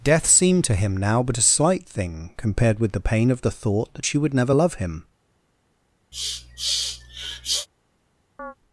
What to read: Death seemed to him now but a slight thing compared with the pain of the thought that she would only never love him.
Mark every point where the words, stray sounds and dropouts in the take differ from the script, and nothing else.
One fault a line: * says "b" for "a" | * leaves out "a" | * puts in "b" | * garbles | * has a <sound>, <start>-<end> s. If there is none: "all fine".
* leaves out "only"
* has a sniff, 6.1-7.7 s
* has a chirp, 8.4-8.5 s